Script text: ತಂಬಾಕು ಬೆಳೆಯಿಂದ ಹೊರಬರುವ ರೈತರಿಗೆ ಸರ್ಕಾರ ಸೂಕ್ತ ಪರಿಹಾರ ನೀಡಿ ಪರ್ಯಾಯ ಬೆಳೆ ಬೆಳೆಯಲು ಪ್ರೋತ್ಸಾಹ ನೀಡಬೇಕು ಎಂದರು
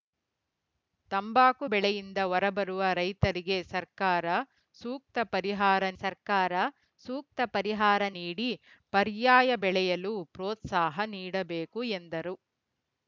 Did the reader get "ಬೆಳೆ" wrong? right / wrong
wrong